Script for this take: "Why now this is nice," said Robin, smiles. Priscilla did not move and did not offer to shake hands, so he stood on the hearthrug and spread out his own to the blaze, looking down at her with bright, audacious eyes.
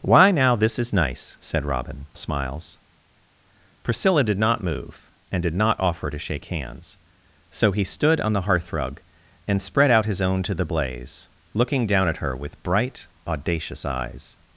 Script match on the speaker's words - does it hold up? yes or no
yes